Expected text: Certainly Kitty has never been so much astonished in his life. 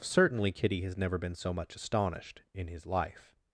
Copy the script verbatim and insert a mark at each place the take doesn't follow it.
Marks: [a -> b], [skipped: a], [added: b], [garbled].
Certainly Kitty has never been so much astonished in his life.